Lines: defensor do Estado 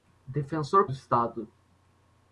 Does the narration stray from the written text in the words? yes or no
no